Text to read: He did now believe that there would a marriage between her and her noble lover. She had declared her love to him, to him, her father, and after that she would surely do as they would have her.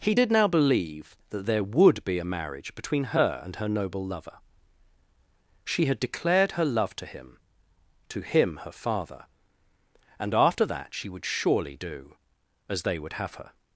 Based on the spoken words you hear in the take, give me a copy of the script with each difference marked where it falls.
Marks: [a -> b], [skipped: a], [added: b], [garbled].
He did now believe that there would [added: be] a marriage between her and her noble lover. She had declared her love to him, to him, her father, and after that she would surely do as they would have her.